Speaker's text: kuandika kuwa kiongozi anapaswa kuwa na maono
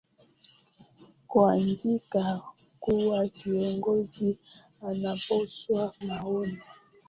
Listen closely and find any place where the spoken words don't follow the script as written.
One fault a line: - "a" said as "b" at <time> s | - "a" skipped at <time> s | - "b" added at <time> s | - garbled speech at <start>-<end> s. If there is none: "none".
- "kuwa na" skipped at 5.9 s